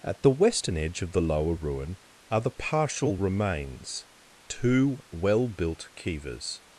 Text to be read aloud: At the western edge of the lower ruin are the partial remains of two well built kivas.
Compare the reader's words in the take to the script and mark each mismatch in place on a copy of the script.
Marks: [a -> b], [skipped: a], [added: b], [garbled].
At the western edge of the lower ruin are the partial remains [skipped: of] two well built kivas.